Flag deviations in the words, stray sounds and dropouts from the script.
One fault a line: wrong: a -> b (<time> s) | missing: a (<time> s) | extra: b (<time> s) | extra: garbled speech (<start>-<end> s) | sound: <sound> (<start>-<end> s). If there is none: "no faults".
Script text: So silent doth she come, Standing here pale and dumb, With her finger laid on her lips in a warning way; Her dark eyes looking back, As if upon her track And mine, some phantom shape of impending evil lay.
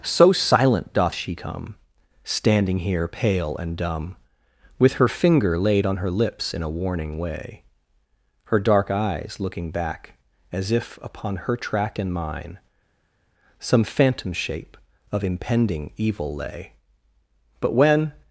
extra: But when (17.6 s)